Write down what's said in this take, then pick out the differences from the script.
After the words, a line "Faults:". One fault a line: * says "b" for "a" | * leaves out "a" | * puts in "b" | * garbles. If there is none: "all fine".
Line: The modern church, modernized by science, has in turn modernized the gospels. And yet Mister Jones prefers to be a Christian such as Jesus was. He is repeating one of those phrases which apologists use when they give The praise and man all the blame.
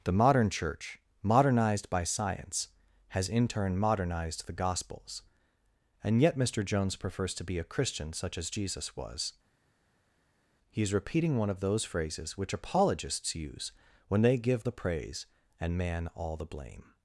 The modern church, modernized by science, has in turn modernized the gospels. And yet Mister Jones prefers to be a Christian such as Jesus was. He is repeating one of those phrases which apologists use when they give The praise and man all the blame.
Faults:
all fine